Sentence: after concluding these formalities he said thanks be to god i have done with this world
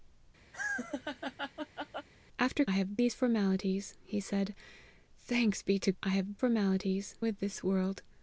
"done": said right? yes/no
no